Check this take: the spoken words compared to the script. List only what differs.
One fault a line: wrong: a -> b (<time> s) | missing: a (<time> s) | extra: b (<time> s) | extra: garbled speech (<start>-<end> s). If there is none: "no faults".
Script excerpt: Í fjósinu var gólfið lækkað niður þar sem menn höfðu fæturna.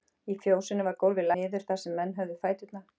missing: lækkað (1.3 s)